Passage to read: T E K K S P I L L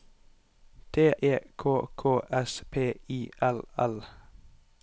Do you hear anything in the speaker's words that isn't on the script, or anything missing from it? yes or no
no